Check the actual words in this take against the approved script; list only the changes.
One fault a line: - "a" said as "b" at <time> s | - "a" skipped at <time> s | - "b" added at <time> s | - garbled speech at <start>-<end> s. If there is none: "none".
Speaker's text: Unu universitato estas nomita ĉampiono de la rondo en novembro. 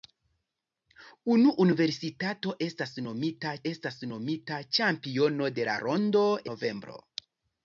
- "estas nomita" added at 3.7 s
- "en" skipped at 6.2 s